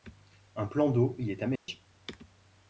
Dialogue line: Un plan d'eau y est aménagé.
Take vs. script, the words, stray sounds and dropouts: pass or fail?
fail